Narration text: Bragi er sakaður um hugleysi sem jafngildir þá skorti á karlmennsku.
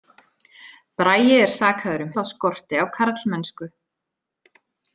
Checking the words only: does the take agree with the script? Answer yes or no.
no